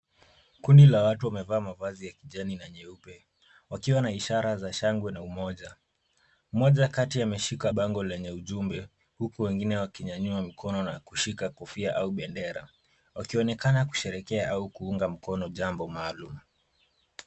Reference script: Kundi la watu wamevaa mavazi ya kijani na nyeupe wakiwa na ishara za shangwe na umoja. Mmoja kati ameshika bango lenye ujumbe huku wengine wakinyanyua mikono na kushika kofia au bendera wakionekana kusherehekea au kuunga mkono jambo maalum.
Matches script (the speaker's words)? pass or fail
pass